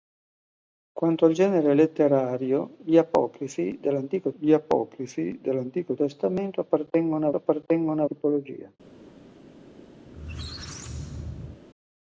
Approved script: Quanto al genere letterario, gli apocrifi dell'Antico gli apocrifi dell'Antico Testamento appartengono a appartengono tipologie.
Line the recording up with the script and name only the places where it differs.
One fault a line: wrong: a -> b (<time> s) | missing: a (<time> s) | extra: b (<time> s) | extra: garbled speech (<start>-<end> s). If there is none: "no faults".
no faults